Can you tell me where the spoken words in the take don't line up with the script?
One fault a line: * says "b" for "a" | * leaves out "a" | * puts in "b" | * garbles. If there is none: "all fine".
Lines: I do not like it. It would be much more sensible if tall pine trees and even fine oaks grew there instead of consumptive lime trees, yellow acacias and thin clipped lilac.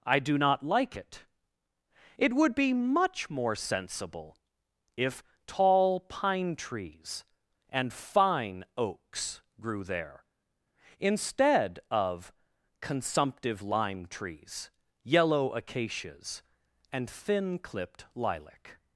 * leaves out "even"